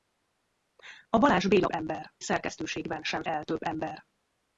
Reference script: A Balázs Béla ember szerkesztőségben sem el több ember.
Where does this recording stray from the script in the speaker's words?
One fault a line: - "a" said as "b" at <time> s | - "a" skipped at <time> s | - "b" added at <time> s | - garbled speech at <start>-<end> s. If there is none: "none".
none